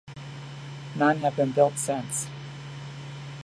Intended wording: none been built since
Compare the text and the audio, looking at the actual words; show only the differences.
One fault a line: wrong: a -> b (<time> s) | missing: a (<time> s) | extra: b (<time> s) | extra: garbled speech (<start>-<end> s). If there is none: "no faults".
extra: have (1.2 s)